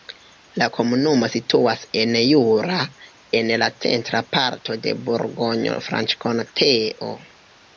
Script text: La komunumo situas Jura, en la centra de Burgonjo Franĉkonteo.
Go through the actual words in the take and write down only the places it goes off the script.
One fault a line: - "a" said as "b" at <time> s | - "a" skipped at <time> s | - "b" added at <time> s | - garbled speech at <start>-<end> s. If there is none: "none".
- "en" added at 2.0 s
- "parto" added at 4.4 s